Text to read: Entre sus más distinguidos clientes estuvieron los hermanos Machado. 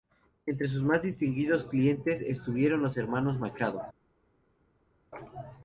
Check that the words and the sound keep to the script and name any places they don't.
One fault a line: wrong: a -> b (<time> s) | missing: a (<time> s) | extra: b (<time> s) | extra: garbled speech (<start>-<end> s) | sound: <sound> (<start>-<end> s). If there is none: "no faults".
no faults